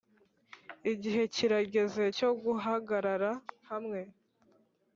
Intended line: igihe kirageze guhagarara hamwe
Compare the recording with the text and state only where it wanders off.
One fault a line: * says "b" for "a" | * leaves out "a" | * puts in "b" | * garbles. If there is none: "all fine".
* puts in "cyo"